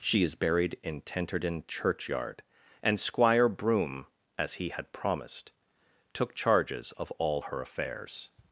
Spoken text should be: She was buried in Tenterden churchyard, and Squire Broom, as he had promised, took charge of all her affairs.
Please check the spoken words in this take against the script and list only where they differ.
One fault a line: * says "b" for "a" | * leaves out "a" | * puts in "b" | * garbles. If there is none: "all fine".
* says "is" for "was"
* says "charges" for "charge"